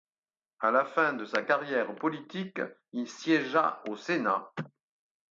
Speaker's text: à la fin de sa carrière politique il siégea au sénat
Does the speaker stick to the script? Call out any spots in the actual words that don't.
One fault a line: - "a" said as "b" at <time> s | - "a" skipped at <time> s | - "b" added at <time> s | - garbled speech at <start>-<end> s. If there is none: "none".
none